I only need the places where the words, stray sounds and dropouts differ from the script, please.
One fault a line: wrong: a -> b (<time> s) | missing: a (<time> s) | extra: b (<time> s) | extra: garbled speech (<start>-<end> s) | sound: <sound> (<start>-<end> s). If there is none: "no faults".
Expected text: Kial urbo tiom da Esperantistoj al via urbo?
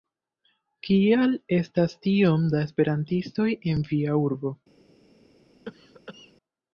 wrong: urbo -> estas (1.6 s)
wrong: al -> en (3.8 s)
sound: cough (5.7-6.3 s)